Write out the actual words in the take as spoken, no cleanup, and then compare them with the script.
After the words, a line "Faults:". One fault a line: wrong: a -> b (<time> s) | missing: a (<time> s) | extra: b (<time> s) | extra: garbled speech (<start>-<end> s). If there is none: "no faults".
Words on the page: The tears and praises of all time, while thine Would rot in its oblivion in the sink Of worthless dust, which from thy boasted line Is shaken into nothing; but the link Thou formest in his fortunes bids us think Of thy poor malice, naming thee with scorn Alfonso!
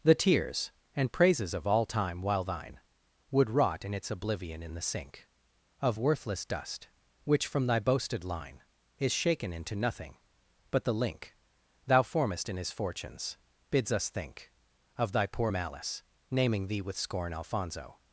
The tears and praises of all time, while thine Would rot in its oblivion in the sink Of worthless dust, which from thy boasted line Is shaken into nothing; but the link Thou formest in his fortunes bids us think Of thy poor malice, naming thee with scorn Alfonso!
Faults:
no faults